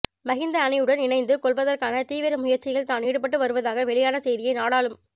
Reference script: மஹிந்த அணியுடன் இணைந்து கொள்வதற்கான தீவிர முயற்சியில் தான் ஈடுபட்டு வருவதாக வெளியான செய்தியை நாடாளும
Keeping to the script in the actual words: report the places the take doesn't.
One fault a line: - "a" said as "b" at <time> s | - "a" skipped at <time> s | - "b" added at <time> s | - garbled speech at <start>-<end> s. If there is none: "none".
none